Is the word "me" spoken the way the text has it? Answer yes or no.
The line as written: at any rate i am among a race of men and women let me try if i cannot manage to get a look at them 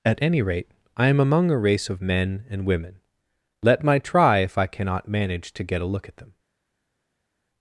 no